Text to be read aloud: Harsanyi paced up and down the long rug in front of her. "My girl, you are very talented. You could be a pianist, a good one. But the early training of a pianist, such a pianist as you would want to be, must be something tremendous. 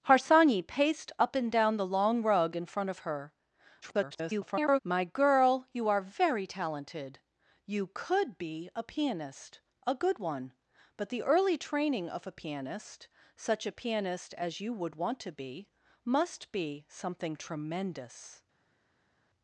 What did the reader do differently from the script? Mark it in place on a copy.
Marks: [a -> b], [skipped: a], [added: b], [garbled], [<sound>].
Harsanyi paced up and down the long rug in front of her. [garbled] "My girl, you are very talented. You could be a pianist, a good one. But the early training of a pianist, such a pianist as you would want to be, must be something tremendous.